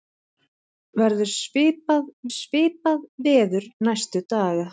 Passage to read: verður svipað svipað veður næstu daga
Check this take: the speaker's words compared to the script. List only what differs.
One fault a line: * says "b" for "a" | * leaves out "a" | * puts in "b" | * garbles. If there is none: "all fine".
all fine